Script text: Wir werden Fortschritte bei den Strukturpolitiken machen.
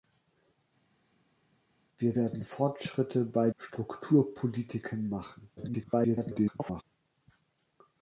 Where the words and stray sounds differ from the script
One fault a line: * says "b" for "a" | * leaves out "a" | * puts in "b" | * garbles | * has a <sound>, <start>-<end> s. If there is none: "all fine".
* leaves out "den"
* garbles